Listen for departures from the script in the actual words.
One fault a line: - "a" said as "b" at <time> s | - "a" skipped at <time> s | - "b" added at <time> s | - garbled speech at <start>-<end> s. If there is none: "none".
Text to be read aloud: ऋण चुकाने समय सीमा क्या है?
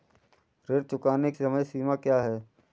none